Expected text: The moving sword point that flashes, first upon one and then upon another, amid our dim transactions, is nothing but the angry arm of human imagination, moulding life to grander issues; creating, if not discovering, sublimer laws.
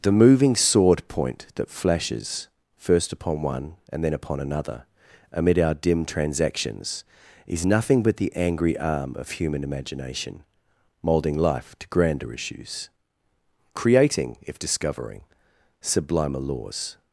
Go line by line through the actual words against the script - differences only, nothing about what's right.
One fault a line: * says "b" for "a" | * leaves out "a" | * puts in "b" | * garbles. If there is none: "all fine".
* leaves out "not"